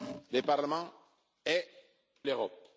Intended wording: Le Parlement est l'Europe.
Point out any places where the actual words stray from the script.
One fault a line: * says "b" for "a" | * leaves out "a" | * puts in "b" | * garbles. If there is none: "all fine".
all fine